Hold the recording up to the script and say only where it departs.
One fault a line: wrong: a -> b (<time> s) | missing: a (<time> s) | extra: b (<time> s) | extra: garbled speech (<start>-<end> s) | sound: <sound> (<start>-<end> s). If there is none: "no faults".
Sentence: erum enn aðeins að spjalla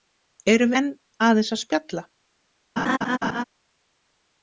sound: laugh (2.8-3.4 s)